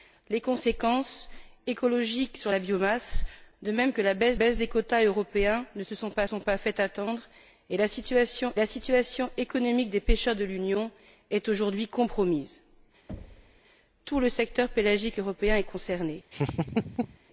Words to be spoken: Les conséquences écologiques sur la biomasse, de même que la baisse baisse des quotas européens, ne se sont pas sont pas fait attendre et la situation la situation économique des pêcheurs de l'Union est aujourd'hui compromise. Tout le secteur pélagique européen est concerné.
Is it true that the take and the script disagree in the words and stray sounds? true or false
true